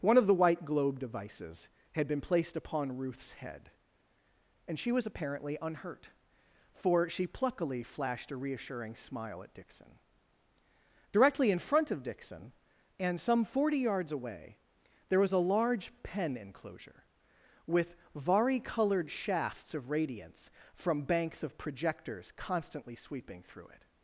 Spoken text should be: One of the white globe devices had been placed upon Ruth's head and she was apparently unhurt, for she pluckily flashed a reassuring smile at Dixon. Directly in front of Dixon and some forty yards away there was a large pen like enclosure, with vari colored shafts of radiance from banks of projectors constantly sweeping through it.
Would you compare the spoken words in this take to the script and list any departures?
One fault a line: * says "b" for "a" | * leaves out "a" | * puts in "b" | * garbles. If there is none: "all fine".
* leaves out "like"